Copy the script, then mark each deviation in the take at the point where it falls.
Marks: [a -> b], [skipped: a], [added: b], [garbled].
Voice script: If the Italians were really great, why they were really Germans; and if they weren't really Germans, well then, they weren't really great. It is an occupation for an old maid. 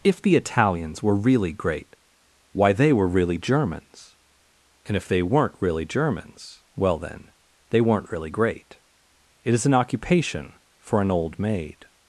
If the Italians were really great, why they were really Germans; and if they weren't really Germans, well then, they weren't really great. It is an occupation for an old maid.